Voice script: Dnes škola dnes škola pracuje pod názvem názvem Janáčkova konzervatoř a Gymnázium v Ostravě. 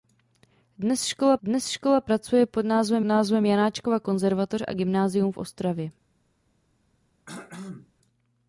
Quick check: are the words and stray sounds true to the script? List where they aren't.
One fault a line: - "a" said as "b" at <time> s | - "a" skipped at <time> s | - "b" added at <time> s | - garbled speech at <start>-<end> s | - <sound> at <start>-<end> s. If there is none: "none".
- throat clearing at 7.3-7.9 s